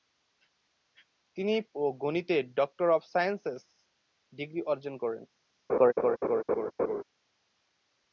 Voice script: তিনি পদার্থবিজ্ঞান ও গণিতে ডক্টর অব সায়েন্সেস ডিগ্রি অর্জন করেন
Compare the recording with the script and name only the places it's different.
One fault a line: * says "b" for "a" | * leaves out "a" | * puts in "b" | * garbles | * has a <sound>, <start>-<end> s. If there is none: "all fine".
* leaves out "পদার্থবিজ্ঞান"
* has a laugh, 5.7-7.0 s